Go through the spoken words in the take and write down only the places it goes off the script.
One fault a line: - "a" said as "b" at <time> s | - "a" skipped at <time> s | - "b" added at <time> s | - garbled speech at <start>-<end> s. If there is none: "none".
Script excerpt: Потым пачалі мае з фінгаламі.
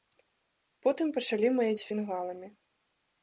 none